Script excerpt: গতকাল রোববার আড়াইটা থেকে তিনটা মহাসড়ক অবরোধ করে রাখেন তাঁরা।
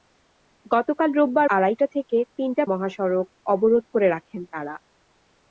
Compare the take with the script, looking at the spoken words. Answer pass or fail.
pass